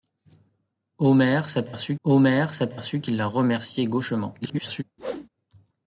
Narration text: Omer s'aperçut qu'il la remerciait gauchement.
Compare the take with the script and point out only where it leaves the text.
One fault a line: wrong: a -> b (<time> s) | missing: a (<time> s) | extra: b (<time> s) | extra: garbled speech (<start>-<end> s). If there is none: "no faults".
extra: omer s'aperçut (2.0 s)
extra: garbled speech (4.4-4.8 s)